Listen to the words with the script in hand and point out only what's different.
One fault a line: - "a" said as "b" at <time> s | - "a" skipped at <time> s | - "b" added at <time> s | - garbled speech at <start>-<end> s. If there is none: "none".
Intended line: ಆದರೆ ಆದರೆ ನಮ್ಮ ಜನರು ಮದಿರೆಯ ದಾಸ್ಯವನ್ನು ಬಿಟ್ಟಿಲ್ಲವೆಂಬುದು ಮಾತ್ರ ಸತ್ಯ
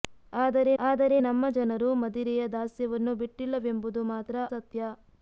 none